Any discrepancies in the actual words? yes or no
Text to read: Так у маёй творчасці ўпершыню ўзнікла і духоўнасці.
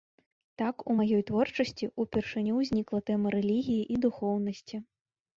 yes